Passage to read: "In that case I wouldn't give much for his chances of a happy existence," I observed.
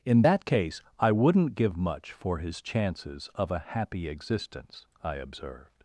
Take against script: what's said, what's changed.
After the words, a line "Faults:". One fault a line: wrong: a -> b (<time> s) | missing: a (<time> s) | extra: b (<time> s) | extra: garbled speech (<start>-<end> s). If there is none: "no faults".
"In that case I wouldn't give much for his chances of a happy existence," I observed.
Faults:
no faults